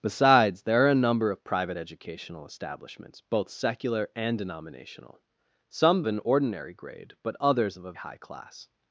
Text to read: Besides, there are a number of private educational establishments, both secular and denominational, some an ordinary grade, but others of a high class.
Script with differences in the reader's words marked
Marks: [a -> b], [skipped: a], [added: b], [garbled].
Besides, there are a number of private educational establishments, both secular and denominational, some an ordinary grade, but others of a high class.